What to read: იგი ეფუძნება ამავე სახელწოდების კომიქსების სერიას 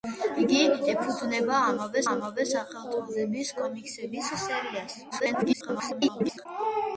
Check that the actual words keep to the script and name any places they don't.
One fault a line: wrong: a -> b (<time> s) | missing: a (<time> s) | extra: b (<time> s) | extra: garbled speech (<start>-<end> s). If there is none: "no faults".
extra: ამავე (2.1 s)
extra: garbled speech (5.1-6.5 s)